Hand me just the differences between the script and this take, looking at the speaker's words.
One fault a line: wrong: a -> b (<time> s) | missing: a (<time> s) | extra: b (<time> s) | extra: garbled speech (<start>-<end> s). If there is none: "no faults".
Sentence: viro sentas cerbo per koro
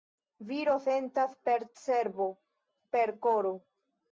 extra: per (1.5 s)